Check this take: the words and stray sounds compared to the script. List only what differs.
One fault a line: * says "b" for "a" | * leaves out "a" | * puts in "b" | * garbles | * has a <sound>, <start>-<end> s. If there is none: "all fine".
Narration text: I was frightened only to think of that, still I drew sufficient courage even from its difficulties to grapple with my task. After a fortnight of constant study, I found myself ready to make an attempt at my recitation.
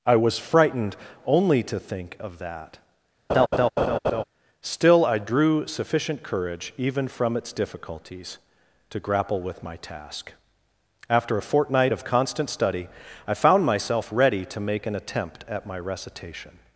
* has a laugh, 3.3-4.2 s